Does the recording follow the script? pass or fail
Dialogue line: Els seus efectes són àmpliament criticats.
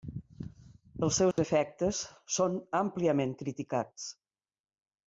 pass